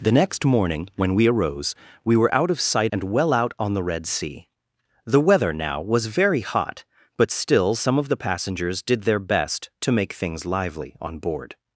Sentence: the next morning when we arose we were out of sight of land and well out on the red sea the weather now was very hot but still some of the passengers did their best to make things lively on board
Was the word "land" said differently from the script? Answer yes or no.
yes